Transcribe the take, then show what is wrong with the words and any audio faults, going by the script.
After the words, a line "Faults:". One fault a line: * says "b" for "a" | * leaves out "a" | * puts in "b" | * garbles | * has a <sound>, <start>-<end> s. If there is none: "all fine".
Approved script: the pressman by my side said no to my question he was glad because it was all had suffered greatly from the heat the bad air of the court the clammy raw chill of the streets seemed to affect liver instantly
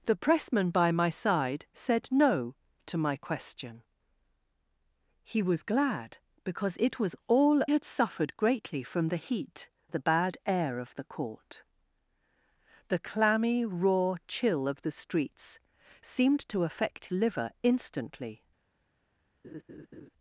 the pressman by my side said no to my question he was glad because it was all had suffered greatly from the heat the bad air of the court the clammy raw chill of the streets seemed to affect liver instantly
Faults:
* has a laugh, 19.4-20.1 s